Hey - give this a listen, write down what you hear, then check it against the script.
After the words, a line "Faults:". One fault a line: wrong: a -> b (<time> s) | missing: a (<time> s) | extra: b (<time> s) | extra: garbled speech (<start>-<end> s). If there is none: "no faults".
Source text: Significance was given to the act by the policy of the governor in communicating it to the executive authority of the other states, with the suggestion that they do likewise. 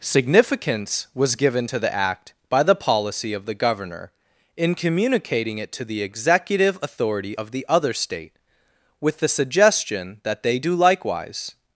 Significance was given to the act by the policy of the governor in communicating it to the executive authority of the other state, with the suggestion that they do likewise.
Faults:
wrong: states -> state (7.9 s)